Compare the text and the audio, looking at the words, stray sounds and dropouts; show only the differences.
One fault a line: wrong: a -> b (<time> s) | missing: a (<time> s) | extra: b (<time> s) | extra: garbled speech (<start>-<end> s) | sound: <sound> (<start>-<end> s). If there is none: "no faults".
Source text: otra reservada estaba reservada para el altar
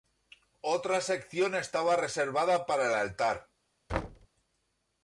wrong: reservada -> sección (1.0 s)
sound: thud (3.9-4.3 s)